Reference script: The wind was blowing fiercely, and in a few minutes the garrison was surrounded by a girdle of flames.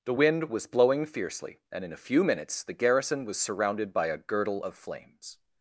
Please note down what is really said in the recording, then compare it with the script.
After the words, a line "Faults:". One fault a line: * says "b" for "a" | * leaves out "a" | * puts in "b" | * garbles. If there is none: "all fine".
The wind was blowing fiercely, and in a few minutes the garrison was surrounded by a girdle of flames.
Faults:
all fine